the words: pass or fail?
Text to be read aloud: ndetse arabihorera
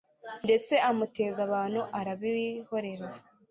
fail